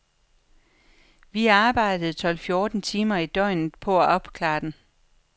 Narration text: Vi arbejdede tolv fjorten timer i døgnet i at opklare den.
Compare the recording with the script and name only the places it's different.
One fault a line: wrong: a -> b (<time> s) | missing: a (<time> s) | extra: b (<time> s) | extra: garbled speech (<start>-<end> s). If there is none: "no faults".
wrong: i -> på (3.8 s)